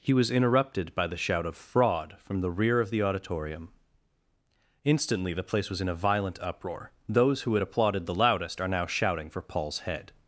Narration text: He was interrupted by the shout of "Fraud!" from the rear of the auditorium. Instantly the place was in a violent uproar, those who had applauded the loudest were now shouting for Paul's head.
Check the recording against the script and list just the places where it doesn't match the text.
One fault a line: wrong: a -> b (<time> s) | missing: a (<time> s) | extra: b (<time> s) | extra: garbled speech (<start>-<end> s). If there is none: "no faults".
wrong: were -> are (8.6 s)